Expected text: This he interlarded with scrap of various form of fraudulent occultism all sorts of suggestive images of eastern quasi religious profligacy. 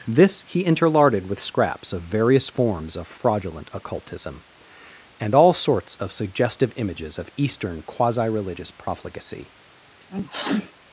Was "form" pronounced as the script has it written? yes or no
no